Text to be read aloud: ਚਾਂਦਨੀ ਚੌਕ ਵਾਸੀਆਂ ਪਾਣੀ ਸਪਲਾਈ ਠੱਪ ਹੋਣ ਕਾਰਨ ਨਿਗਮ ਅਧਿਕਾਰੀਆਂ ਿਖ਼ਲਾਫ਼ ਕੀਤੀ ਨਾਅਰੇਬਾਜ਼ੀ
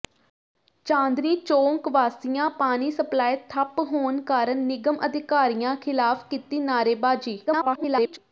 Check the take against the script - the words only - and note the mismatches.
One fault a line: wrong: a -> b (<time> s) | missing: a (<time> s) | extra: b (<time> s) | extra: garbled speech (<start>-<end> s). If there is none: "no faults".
extra: garbled speech (7.5-8.2 s)